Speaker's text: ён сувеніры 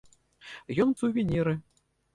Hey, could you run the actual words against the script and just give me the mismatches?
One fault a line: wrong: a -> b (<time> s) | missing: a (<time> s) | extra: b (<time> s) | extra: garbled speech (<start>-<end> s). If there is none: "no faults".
no faults